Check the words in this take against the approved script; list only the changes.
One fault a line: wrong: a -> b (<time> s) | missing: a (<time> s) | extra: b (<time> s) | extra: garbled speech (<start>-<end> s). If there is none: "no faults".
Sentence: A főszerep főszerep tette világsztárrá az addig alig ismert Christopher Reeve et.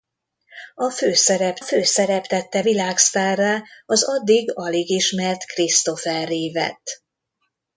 no faults